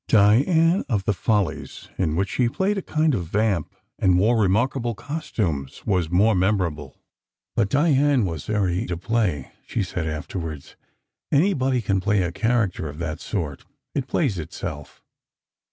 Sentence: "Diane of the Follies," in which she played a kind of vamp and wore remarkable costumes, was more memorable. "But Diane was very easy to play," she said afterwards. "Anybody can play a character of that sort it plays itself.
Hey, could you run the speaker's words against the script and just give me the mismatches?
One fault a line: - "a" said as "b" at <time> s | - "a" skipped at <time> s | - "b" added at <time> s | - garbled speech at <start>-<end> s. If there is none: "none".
- "easy" skipped at 8.8 s